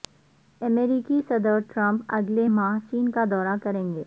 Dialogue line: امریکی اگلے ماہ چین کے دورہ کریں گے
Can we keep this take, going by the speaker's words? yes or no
no